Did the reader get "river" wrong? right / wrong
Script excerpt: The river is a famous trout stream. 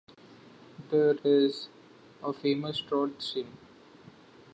wrong